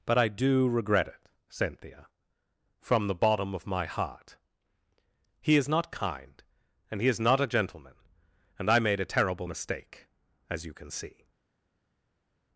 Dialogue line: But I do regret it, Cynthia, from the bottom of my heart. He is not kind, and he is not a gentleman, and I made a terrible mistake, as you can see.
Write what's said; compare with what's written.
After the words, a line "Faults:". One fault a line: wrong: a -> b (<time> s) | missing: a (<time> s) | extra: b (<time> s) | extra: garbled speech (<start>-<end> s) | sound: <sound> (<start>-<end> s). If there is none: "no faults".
But I do regret it, Cynthia, from the bottom of my heart. He is not kind, and he is not a gentleman, and I made a terrible mistake, as you can see.
Faults:
no faults